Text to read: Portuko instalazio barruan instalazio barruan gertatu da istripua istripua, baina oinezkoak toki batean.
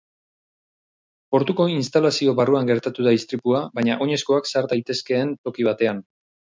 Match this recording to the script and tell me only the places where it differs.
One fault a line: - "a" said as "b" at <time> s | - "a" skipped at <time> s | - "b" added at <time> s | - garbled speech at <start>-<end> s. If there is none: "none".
- "instalazio barruan" skipped at 2.7 s
- "istripua" skipped at 3.6 s
- "sar daitezkeen" added at 4.5 s